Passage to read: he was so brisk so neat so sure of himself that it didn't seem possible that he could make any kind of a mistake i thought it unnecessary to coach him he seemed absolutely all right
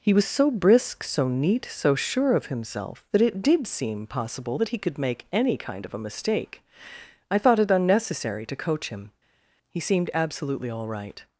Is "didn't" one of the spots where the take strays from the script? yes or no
yes